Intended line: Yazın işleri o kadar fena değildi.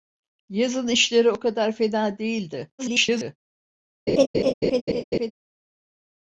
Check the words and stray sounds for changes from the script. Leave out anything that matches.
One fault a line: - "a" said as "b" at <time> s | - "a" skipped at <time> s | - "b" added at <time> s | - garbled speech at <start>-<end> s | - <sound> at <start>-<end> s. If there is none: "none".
- garbled speech at 2.8-3.4 s
- laugh at 4.1-5.3 s